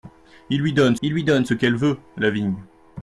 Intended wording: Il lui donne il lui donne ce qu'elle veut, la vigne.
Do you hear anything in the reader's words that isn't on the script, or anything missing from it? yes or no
no